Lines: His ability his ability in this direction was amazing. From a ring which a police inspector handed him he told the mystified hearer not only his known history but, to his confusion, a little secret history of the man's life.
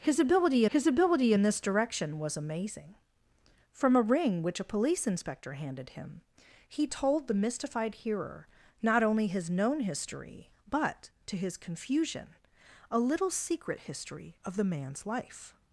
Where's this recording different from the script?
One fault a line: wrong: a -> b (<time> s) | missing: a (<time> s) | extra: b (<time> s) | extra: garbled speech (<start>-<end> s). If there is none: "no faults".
no faults